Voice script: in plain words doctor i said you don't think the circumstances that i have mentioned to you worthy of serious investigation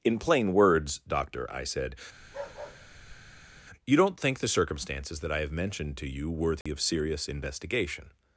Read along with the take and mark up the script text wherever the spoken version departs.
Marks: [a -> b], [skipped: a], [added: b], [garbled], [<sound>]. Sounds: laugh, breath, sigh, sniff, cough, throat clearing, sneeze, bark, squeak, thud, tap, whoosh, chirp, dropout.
in plain words doctor i said [bark] you don't think the circumstances that i have mentioned to you worthy [dropout] of serious investigation